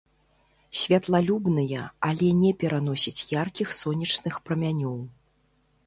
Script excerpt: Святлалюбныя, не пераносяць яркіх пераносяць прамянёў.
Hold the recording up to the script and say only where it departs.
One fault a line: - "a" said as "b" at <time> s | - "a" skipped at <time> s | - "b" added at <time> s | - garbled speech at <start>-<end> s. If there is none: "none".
- "але" added at 2.1 s
- "пераносяць" said as "сонечных" at 3.8 s